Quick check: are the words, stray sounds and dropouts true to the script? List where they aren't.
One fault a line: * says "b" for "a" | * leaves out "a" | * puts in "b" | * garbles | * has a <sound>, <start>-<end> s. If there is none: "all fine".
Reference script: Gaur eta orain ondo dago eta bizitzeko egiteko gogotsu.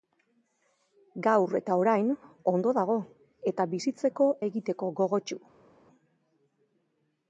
all fine